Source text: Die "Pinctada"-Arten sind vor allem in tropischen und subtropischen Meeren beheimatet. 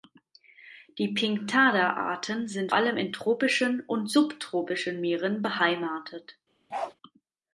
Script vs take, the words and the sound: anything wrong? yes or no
yes